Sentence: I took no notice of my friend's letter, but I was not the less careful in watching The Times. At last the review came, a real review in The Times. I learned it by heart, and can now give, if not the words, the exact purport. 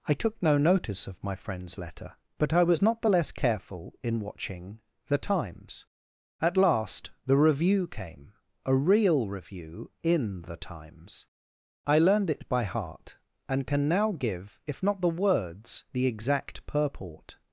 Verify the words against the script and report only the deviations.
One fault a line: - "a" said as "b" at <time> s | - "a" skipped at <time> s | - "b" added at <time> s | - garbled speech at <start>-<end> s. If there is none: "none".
none